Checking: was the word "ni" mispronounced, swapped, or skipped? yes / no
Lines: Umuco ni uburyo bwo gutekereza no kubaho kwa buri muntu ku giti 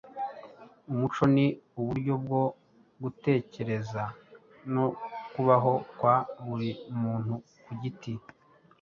no